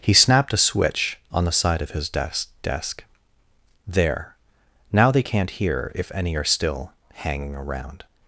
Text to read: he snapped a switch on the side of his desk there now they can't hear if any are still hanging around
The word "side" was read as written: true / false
true